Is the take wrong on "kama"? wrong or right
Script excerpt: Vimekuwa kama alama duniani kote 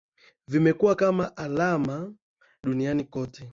right